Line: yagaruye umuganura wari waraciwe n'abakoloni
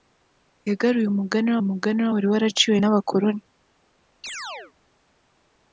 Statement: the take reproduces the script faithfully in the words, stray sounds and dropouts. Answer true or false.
false